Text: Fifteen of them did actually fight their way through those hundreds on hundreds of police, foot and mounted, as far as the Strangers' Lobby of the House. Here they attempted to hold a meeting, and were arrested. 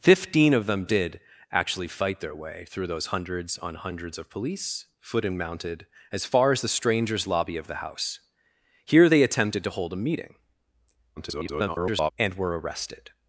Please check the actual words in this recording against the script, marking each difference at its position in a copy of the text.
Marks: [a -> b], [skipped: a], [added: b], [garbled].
Fifteen of them did actually fight their way through those hundreds on hundreds of police, foot and mounted, as far as the Strangers' Lobby of the House. Here they attempted to hold a meeting, [garbled] and were arrested.